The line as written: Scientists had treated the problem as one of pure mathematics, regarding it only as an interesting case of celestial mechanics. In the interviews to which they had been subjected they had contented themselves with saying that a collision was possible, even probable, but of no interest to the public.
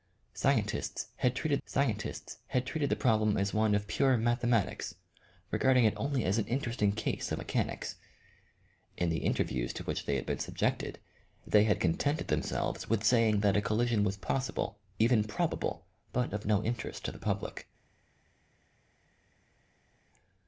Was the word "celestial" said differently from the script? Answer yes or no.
yes